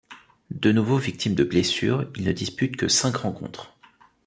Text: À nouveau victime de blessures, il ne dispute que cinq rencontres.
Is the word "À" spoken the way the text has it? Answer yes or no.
no